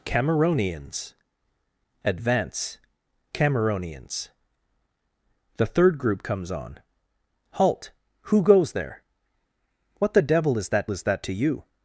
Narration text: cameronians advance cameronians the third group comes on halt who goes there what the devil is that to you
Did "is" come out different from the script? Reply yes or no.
no